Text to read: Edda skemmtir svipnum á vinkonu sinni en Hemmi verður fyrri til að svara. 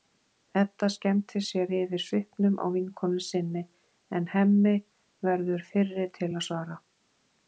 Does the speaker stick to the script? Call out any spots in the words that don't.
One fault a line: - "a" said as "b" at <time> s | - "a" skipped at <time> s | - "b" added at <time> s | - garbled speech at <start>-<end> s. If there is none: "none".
- "sér yfir" added at 1.5 s